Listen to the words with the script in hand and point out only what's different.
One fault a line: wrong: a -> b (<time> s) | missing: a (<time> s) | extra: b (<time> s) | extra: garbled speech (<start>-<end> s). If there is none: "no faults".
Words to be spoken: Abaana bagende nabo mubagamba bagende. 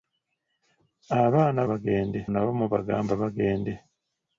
no faults